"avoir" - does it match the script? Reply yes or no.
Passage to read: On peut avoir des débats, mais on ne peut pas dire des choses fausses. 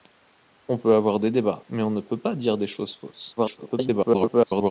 yes